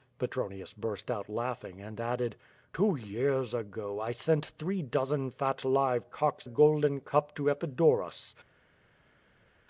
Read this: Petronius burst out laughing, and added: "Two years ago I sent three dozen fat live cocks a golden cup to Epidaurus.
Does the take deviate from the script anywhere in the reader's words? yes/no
no